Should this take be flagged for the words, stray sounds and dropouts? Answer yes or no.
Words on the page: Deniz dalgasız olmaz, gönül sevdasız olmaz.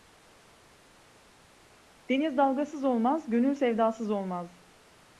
no